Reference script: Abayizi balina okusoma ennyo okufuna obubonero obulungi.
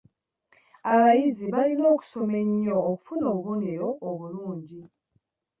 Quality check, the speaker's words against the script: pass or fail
pass